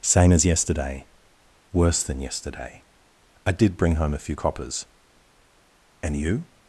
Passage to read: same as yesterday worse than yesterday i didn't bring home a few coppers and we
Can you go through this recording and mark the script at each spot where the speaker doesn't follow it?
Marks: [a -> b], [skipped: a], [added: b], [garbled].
same as yesterday worse than yesterday i [didn't -> did] bring home a few coppers and [we -> you]